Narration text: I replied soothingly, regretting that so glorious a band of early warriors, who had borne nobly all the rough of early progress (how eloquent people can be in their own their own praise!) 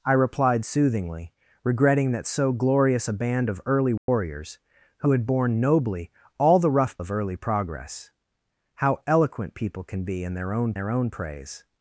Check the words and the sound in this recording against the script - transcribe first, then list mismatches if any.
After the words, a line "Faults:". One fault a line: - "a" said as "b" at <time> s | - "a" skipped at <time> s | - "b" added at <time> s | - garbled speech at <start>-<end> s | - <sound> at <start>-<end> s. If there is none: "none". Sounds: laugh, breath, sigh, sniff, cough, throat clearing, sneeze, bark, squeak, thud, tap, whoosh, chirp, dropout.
I replied soothingly, regretting that so glorious a band of early warriors, who had borne nobly all the rough of early progress (how eloquent people can be in their own their own praise!)
Faults:
- dropout at 4.0-4.1 s